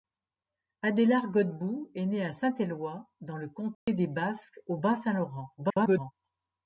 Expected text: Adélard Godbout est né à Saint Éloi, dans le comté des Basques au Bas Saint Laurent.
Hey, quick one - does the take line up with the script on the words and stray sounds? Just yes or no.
no